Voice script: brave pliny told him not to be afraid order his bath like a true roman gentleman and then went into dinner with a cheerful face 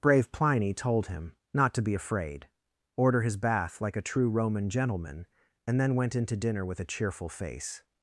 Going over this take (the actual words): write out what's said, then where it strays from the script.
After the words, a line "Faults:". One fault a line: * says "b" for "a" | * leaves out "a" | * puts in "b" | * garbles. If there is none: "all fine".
brave pliny told him not to be afraid order his bath like a true roman gentleman and then went into dinner with a cheerful face
Faults:
all fine